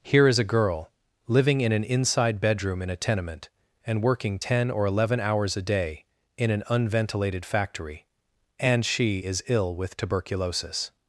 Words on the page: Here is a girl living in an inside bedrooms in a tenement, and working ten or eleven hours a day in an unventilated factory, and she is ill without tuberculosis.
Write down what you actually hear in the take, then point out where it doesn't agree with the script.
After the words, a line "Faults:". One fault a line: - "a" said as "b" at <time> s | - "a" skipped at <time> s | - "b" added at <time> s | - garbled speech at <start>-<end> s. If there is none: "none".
Here is a girl living in an inside bedroom in a tenement, and working ten or eleven hours a day in an unventilated factory, and she is ill with tuberculosis.
Faults:
- "bedrooms" said as "bedroom" at 2.4 s
- "without" said as "with" at 9.7 s